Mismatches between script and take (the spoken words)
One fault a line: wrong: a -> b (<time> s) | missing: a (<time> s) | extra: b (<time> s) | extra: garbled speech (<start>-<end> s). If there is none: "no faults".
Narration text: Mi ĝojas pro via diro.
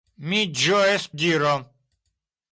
missing: pro via (1.1 s)